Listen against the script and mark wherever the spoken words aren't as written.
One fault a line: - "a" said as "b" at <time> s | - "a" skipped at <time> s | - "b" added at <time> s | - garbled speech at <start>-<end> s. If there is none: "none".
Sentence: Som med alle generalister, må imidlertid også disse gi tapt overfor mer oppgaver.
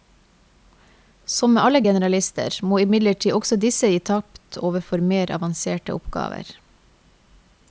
- "avanserte" added at 5.4 s